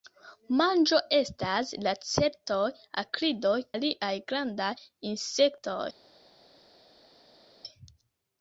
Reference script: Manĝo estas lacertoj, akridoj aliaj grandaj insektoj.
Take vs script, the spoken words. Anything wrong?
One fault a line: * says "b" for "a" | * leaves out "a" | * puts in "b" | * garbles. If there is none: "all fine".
all fine